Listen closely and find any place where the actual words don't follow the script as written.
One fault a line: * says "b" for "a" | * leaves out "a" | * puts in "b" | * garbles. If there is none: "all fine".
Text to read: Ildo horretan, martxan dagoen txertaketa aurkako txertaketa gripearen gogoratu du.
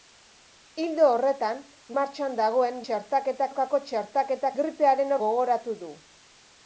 all fine